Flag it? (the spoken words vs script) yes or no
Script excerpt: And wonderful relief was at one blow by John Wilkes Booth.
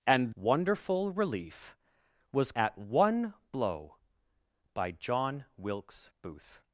no